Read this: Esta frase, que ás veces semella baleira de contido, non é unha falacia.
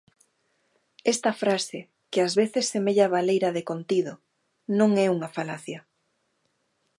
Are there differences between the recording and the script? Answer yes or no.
no